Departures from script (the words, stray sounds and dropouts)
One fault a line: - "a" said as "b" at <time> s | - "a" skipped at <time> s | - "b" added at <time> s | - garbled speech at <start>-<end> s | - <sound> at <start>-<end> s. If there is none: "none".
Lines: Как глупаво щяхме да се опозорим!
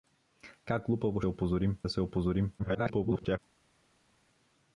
- "щяхме" said as "опозорим" at 1.3 s
- garbled speech at 2.6-3.4 s